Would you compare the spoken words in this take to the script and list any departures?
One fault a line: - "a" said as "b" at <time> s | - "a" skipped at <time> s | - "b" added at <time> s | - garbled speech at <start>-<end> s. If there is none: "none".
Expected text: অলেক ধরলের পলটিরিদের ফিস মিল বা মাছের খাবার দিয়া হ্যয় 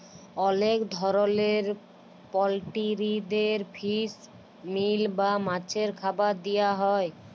none